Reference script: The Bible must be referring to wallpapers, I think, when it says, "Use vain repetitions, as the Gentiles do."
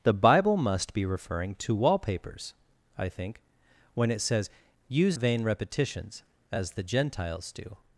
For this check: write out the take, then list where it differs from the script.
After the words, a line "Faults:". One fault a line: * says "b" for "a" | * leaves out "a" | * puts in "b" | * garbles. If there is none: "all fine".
The Bible must be referring to wallpapers, I think, when it says, "Use vain repetitions, as the Gentiles do."
Faults:
all fine